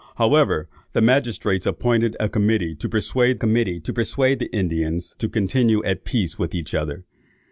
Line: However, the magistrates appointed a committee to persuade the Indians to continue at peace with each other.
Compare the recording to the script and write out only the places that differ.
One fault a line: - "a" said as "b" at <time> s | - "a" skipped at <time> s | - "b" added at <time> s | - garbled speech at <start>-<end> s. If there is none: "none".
- "committee to persuade" added at 3.3 s